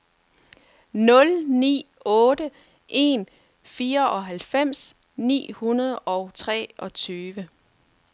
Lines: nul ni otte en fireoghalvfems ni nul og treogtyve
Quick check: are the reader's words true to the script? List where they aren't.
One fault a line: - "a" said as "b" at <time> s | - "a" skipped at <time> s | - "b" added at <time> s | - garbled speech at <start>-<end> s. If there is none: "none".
- "nul" said as "hundrede" at 5.5 s